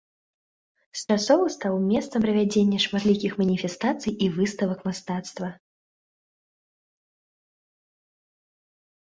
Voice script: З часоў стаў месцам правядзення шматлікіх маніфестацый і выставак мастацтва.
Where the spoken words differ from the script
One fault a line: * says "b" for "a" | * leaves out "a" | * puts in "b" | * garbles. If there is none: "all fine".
all fine